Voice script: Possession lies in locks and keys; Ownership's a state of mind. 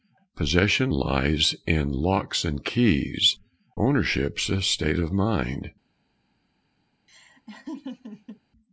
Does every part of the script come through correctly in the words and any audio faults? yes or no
no